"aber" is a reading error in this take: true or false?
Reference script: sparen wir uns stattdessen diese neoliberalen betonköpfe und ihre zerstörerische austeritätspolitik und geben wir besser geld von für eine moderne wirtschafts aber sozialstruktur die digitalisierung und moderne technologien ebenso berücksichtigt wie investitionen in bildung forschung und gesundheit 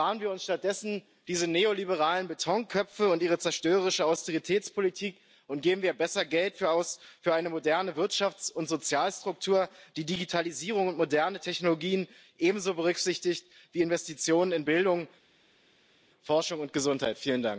true